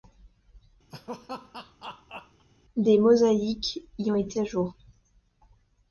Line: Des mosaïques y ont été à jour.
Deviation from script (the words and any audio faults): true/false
true